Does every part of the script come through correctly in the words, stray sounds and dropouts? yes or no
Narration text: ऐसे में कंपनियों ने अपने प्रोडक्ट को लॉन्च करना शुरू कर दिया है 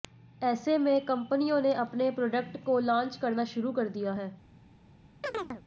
no